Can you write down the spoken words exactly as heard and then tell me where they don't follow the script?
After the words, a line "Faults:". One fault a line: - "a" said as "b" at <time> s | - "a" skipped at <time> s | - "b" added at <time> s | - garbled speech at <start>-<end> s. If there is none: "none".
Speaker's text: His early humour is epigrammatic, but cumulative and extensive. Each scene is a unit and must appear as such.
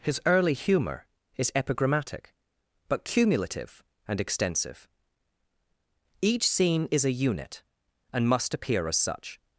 His early humour is epigrammatic, but cumulative and extensive. Each scene is a unit and must appear as such.
Faults:
none